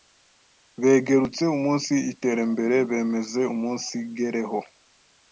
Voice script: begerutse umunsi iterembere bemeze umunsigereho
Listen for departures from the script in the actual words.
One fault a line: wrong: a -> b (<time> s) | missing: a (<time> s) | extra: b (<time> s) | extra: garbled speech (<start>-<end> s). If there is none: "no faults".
no faults